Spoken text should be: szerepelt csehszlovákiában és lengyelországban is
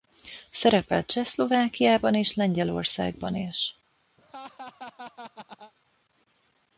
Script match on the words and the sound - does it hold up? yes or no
no